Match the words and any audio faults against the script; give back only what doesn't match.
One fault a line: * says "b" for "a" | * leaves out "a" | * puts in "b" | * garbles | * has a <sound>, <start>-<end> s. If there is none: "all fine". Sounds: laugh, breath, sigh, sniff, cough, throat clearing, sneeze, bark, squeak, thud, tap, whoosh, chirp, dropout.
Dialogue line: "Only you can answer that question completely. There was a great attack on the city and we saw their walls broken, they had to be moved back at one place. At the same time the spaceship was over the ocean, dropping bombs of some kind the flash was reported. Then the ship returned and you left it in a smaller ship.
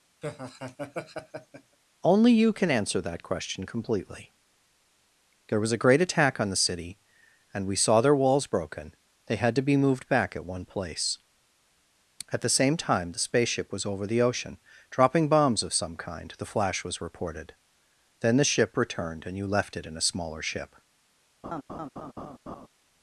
* has a laugh, 0.2-1.8 s
* has a laugh, 21.4-22.7 s